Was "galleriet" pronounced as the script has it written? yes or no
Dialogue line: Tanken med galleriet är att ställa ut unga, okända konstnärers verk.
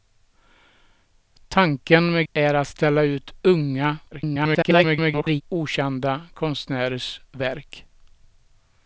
no